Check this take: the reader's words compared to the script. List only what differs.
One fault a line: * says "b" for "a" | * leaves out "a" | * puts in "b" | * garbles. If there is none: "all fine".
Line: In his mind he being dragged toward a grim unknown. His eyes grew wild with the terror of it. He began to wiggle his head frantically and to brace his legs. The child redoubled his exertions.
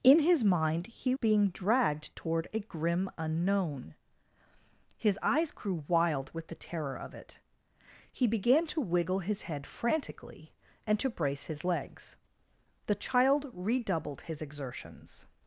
all fine